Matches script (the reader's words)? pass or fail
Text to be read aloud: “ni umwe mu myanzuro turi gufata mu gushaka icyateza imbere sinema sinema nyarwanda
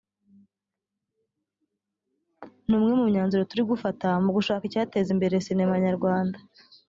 fail